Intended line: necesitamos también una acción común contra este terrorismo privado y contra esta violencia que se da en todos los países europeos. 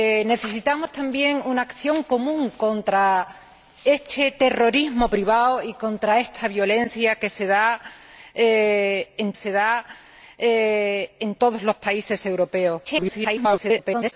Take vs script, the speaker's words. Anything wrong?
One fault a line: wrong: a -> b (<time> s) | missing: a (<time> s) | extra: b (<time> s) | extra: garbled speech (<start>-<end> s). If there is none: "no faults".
extra: se da en (9.3 s)
extra: garbled speech (12.8-14.1 s)